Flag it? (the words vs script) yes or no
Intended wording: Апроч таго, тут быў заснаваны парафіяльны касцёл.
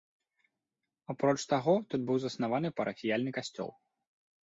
no